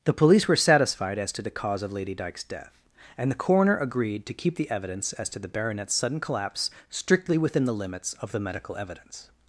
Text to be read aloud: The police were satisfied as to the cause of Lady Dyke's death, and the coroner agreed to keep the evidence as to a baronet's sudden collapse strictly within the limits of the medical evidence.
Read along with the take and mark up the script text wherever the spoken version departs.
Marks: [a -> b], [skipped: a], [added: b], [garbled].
The police were satisfied as to the cause of Lady Dyke's death, and the coroner agreed to keep the evidence as to [a -> the] baronet's sudden collapse strictly within the limits of the medical evidence.